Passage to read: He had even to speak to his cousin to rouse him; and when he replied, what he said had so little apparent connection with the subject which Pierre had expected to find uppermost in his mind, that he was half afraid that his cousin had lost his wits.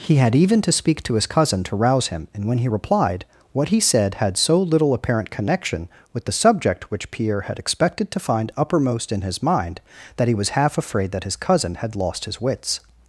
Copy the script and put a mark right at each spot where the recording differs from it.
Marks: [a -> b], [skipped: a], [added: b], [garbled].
He had even to speak to his cousin to rouse him; and when he replied, what he said had so little apparent connection with the subject which Pierre had expected to find uppermost in his mind, that he was half afraid that his cousin had lost his wits.